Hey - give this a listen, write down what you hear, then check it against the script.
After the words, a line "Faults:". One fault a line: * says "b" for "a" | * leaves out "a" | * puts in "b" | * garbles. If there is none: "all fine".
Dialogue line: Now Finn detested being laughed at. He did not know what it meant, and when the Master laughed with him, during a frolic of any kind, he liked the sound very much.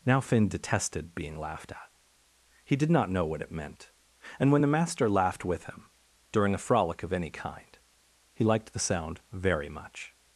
Now Finn detested being laughed at. He did not know what it meant, and when the Master laughed with him, during a frolic of any kind, he liked the sound very much.
Faults:
all fine